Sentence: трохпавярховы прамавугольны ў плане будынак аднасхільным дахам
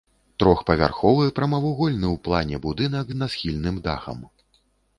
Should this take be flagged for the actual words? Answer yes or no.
no